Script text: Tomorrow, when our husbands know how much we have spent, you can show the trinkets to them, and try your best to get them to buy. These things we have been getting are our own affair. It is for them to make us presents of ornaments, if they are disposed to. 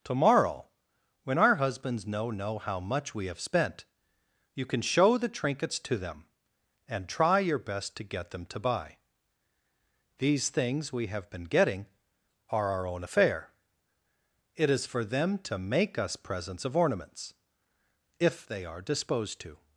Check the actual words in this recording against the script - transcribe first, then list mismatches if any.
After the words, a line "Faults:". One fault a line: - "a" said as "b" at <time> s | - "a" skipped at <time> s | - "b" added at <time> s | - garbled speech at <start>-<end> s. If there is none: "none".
Tomorrow, when our husbands know know how much we have spent, you can show the trinkets to them, and try your best to get them to buy. These things we have been getting are our own affair. It is for them to make us presents of ornaments, if they are disposed to.
Faults:
- "know" added at 2.3 s